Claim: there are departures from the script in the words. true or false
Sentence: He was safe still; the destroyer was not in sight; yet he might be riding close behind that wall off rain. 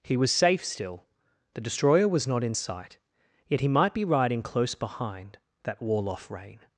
false